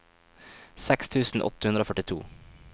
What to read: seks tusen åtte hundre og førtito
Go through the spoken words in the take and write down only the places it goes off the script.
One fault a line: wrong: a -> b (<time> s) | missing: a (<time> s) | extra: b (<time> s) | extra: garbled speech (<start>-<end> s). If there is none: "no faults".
no faults